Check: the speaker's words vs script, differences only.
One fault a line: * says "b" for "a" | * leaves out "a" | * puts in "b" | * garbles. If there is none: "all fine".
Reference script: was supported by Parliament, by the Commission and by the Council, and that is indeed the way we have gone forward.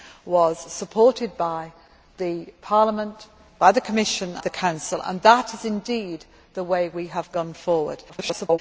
* leaves out "and by"
* garbles